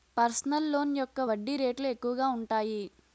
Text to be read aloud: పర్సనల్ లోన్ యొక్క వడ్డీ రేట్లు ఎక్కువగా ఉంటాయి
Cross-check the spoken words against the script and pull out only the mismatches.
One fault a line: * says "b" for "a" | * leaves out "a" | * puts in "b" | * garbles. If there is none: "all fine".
all fine